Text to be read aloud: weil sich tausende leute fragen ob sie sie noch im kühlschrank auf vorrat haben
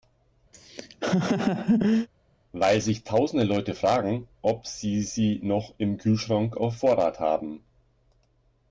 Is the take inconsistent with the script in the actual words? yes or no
no